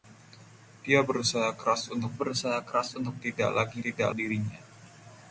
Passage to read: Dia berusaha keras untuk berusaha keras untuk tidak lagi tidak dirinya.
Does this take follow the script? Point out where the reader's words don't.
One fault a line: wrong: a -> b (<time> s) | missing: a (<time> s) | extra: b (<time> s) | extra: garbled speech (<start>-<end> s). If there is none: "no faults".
no faults